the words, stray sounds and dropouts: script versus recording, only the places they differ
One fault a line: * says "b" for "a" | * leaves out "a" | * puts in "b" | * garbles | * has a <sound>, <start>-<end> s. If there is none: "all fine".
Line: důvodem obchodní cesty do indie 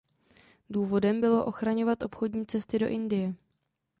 * puts in "bylo ochraňovat"